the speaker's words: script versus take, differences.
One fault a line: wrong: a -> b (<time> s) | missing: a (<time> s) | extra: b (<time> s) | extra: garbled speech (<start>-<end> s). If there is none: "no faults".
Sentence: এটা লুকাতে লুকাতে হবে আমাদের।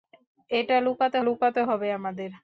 no faults